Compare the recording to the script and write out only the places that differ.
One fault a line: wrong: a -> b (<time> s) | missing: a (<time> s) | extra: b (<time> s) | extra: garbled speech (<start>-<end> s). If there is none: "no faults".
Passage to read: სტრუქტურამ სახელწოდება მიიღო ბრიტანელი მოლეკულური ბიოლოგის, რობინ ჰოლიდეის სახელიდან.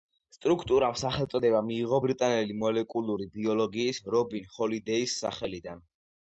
no faults